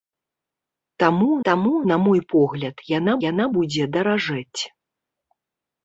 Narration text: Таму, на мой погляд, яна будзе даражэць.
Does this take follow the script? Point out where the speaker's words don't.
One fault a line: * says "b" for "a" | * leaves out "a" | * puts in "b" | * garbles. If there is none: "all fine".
* puts in "таму"
* puts in "яна"